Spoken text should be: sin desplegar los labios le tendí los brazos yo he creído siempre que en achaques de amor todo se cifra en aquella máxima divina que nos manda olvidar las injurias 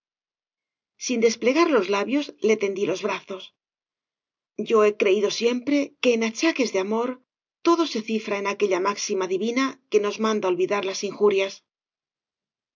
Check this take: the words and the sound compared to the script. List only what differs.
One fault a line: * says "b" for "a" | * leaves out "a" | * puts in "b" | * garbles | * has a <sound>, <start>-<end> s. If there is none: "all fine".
all fine